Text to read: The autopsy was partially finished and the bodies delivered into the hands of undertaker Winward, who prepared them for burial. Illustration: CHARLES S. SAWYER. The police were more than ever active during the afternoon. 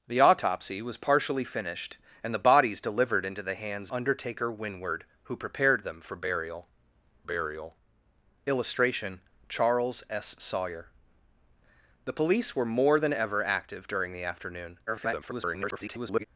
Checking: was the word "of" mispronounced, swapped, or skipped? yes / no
yes